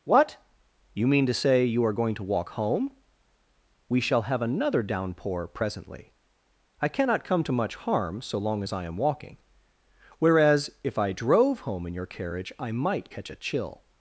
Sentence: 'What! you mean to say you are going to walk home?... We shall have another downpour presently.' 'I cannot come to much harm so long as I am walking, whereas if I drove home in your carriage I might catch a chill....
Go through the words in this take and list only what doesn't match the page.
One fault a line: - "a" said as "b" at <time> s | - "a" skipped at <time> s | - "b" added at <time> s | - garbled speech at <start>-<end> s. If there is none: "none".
none